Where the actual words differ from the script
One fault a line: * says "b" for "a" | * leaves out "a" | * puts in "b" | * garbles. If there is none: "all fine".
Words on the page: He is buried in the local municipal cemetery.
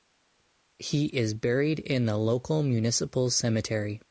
all fine